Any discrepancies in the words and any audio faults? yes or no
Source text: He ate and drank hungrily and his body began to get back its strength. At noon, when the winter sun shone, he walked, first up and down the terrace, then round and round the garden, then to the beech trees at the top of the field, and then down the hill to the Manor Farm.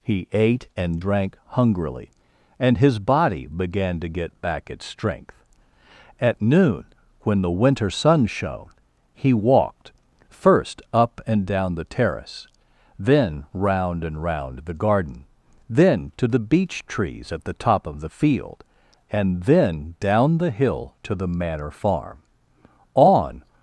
yes